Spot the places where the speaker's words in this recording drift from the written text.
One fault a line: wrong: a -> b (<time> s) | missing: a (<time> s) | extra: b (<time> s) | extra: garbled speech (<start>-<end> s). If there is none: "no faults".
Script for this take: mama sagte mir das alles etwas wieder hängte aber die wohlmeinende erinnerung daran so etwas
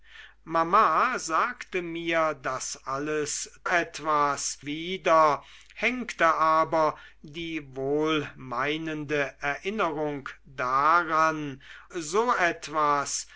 no faults